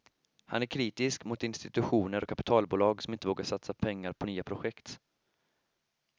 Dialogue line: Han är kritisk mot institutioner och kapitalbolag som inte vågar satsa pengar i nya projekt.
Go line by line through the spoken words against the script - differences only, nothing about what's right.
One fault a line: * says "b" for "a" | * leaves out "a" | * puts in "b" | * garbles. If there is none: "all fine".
* says "på" for "i"